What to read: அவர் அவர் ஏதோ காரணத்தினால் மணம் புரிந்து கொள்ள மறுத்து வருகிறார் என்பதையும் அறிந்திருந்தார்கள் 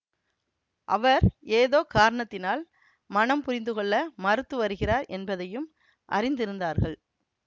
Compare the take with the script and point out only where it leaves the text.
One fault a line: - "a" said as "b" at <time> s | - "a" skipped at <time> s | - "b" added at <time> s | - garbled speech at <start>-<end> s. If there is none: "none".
- "அவர்" skipped at 1.2 s